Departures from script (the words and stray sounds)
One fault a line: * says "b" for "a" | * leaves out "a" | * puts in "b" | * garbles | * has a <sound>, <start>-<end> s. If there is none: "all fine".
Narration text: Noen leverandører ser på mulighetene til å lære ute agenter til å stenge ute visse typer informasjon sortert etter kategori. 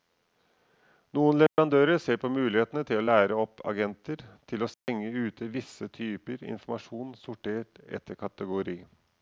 * has a dropout, 1.5-1.6 s
* says "opp" for "ute"
* has a dropout, 4.7-4.9 s